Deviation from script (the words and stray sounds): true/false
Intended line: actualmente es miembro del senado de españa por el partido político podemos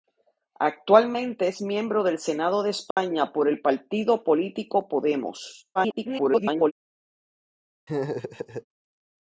true